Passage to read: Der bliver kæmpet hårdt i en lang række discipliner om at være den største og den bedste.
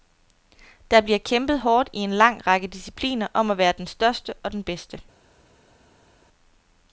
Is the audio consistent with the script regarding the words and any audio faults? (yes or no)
yes